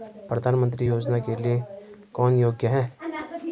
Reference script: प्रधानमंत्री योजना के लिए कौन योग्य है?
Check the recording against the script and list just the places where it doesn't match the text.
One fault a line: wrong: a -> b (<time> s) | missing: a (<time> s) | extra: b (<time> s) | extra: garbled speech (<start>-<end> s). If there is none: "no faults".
no faults